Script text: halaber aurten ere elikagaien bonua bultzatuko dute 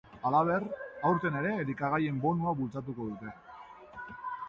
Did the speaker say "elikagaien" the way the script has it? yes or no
yes